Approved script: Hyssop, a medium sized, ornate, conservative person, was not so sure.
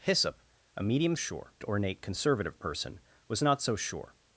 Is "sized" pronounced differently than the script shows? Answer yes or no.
yes